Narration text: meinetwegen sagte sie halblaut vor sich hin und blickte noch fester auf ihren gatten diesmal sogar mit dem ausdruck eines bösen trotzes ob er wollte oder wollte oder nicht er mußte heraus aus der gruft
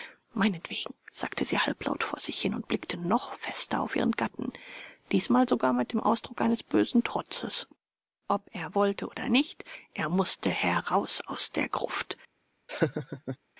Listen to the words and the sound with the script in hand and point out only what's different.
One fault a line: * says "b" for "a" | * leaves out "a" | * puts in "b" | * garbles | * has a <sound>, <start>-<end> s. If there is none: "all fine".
* leaves out "wollte oder"
* has a laugh, 12.7-13.4 s